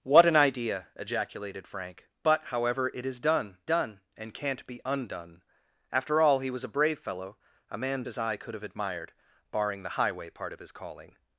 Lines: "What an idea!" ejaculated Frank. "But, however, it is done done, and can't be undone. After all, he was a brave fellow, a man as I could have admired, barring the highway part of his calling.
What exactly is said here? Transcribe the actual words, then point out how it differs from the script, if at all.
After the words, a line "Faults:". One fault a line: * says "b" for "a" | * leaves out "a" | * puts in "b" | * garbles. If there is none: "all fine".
"What an idea!" ejaculated Frank. "But, however, it is done done, and can't be undone. After all, he was a brave fellow, a man as I could have admired, barring the highway part of his calling.
Faults:
all fine